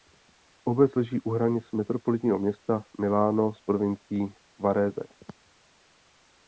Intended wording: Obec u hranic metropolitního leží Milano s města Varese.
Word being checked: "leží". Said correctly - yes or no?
no